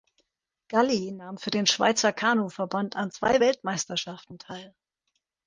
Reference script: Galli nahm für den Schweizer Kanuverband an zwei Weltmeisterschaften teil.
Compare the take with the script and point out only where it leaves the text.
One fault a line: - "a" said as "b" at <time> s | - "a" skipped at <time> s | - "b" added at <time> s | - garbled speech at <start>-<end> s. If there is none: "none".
none